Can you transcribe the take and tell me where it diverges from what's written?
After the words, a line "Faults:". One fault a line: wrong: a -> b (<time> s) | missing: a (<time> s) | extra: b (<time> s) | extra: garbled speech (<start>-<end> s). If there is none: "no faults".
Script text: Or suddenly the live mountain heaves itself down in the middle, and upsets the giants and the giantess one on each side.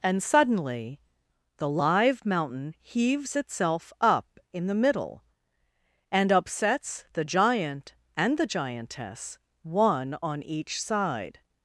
And suddenly the live mountain heaves itself up in the middle, and upsets the giant and the giantess one on each side.
Faults:
wrong: Or -> And (0.0 s)
wrong: down -> up (4.0 s)
wrong: giants -> giant (7.2 s)